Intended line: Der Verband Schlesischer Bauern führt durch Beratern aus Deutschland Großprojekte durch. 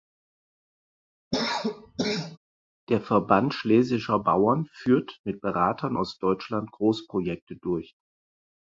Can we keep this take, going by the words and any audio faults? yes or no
no